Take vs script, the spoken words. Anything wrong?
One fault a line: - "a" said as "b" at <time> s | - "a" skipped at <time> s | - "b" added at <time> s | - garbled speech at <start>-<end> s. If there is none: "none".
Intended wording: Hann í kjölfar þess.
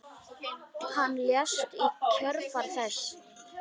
- "lést" added at 1.3 s